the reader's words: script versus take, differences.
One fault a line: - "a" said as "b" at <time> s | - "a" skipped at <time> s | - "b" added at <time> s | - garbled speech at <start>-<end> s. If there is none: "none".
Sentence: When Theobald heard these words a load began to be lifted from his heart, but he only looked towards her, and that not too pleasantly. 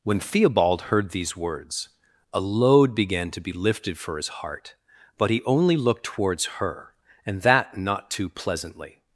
- "from" said as "for" at 4.0 s